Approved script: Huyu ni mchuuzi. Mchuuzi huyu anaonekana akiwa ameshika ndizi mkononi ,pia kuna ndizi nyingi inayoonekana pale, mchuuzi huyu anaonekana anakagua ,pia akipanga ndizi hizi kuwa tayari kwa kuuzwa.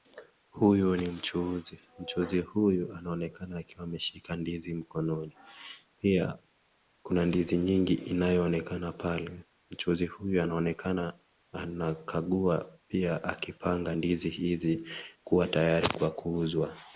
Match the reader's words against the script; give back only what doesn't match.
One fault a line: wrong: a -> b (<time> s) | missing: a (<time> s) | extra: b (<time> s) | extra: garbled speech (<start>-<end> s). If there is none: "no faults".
no faults